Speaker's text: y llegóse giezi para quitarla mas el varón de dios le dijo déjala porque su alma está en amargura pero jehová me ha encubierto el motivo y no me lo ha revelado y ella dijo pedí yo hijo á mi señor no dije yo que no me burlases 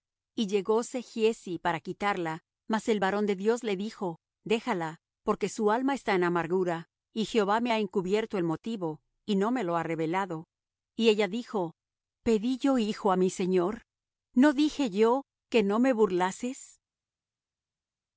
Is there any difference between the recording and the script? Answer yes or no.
yes